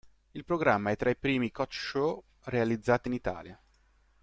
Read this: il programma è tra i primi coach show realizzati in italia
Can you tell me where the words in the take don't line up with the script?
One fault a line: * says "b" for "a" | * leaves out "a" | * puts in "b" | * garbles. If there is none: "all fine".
all fine